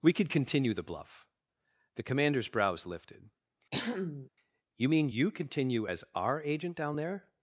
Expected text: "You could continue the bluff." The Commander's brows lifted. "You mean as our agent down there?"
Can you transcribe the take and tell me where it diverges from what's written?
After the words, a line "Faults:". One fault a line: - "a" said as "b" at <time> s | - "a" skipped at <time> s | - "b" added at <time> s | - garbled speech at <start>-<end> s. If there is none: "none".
"We could continue the bluff." The Commander's brows lifted. "You mean you continue as our agent down there?"
Faults:
- "You" said as "We" at 0.0 s
- "you continue" added at 5.1 s